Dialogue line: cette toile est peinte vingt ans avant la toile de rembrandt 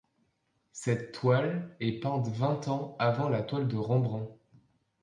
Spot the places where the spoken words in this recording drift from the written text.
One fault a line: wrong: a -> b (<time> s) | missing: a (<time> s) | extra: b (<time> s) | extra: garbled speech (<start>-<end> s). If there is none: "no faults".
no faults